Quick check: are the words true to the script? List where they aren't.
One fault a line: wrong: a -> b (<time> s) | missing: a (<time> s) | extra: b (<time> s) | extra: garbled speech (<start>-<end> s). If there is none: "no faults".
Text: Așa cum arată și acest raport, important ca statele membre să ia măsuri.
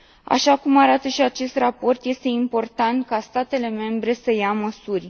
extra: este (2.0 s)